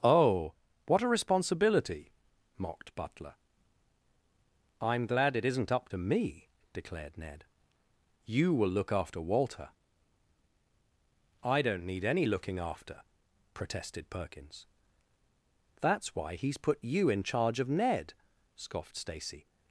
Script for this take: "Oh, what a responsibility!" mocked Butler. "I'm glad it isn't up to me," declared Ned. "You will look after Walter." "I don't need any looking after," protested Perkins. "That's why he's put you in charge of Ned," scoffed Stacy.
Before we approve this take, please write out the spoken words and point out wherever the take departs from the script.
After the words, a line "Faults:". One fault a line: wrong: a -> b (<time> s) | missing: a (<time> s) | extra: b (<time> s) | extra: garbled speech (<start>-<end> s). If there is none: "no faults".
"Oh, what a responsibility!" mocked Butler. "I'm glad it isn't up to me," declared Ned. "You will look after Walter." "I don't need any looking after," protested Perkins. "That's why he's put you in charge of Ned," scoffed Stacy.
Faults:
no faults